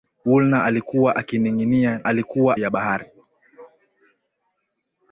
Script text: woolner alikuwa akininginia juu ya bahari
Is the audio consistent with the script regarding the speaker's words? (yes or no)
no